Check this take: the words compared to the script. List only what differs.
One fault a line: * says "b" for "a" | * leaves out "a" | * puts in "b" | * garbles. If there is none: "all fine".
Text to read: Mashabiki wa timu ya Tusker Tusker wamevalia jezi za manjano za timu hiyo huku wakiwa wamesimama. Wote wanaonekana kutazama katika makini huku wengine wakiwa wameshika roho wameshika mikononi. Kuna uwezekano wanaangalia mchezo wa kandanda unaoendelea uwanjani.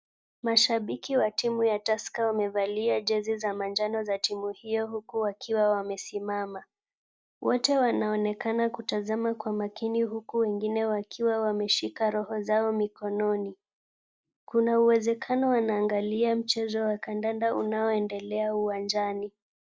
* leaves out "Tusker"
* says "kwa" for "katika"
* says "zao" for "wameshika"